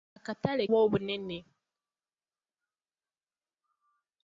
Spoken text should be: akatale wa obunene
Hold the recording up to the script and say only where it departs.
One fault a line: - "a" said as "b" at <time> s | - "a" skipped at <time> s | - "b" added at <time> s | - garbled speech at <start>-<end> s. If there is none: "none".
none